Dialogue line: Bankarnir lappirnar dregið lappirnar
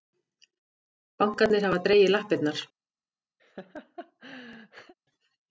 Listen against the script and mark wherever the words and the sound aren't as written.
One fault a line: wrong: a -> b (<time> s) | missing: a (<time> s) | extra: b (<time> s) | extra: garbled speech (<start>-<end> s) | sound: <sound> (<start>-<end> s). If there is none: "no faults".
wrong: lappirnar -> hafa (1.7 s)
sound: laugh (3.4-4.9 s)